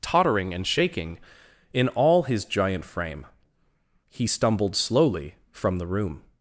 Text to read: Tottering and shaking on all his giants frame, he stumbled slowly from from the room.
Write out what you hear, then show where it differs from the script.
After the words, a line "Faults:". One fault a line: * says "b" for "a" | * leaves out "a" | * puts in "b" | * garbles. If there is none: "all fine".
Tottering and shaking in all his giant frame, he stumbled slowly from the room.
Faults:
* says "in" for "on"
* says "giant" for "giants"
* leaves out "from"